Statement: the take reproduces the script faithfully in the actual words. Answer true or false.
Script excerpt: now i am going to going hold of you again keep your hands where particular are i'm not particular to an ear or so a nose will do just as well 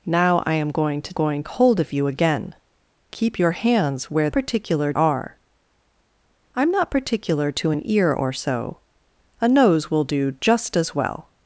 true